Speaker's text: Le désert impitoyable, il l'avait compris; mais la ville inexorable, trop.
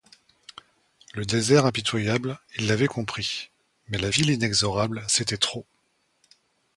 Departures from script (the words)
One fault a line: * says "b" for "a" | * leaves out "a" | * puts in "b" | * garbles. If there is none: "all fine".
* puts in "c'était"